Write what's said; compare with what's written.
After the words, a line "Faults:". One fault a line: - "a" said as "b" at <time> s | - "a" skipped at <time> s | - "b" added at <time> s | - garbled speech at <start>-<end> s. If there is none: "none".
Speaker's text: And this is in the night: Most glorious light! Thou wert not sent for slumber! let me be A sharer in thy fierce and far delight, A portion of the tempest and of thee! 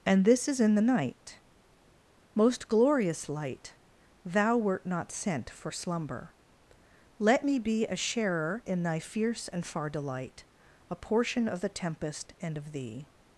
And this is in the night: Most glorious light! Thou wert not sent for slumber! let me be A sharer in thy fierce and far delight, A portion of the tempest and of thee!
Faults:
none